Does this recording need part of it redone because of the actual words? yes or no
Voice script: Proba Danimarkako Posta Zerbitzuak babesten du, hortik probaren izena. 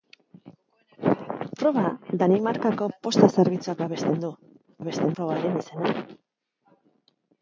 yes